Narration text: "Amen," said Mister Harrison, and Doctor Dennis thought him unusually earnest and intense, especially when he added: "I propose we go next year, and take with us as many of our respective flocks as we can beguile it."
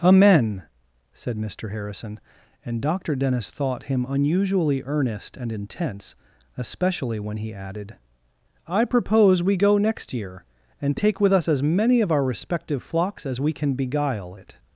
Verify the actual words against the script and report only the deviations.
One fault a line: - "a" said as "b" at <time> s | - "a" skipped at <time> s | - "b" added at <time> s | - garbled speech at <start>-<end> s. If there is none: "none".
none